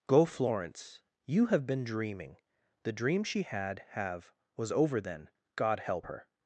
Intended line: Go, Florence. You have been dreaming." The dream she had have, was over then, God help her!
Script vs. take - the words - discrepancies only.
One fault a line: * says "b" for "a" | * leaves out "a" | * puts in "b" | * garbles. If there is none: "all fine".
all fine